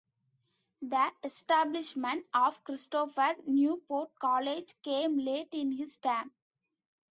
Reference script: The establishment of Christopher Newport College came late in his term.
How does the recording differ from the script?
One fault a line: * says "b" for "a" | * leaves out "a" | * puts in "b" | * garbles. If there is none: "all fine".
all fine